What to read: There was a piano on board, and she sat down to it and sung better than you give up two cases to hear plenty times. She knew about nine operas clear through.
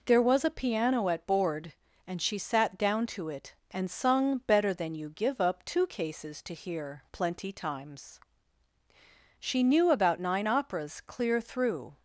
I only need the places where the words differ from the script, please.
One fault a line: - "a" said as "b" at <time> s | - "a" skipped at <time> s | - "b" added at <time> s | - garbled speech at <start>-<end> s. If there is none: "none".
- "on" said as "at" at 1.1 s